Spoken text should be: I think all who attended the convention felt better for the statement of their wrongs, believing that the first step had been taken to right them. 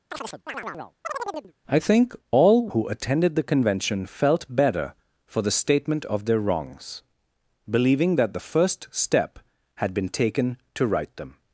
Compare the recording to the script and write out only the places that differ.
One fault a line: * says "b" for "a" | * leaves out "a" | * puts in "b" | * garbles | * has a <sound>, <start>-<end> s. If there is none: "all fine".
* has a chirp, 0.1-1.5 s